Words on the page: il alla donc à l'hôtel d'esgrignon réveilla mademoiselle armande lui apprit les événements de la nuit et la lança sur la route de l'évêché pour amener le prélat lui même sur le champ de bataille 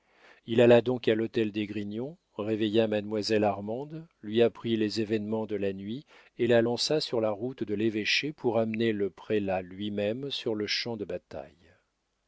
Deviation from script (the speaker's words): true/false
false